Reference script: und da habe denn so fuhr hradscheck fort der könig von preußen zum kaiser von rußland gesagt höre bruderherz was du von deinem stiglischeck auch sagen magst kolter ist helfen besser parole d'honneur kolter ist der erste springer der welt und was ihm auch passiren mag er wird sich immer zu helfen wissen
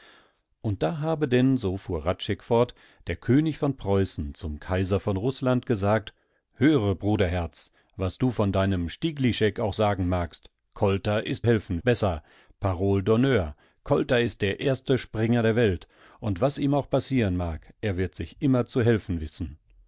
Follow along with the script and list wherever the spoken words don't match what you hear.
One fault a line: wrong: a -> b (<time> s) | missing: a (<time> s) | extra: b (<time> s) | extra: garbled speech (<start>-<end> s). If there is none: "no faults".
no faults